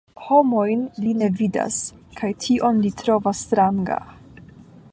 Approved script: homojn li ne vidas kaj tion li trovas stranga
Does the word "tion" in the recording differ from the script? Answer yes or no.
no